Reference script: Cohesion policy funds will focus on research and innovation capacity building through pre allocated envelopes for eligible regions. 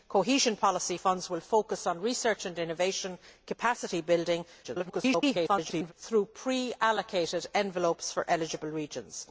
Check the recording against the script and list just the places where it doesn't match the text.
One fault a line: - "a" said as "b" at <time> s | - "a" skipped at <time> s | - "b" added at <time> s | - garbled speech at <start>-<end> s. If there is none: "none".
- garbled speech at 4.6-5.9 s